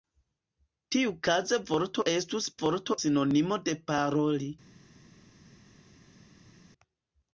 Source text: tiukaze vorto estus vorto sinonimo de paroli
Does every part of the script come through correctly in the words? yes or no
yes